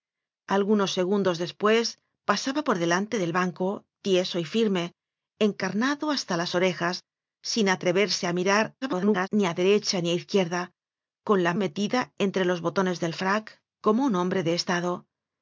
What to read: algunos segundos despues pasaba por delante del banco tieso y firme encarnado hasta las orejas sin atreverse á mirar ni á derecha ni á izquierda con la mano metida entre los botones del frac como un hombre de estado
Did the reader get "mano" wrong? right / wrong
wrong